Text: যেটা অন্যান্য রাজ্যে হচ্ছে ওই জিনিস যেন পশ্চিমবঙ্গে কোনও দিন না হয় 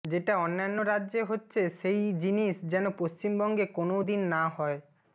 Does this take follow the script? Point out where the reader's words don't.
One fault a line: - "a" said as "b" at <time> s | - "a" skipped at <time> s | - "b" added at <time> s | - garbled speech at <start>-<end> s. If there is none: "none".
- "ওই" said as "সেই" at 1.8 s